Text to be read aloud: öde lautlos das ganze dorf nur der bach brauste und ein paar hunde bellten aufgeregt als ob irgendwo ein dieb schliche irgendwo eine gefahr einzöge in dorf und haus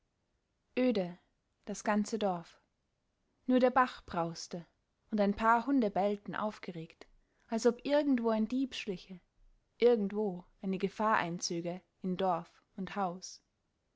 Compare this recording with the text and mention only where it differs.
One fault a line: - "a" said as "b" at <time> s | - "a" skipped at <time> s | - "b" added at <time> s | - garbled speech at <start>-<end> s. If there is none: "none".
- "lautlos" skipped at 1.2 s